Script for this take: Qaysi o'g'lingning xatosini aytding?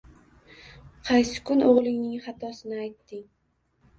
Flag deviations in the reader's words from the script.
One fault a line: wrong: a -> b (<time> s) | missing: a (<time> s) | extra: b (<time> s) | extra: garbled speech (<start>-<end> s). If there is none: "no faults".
extra: kun (1.5 s)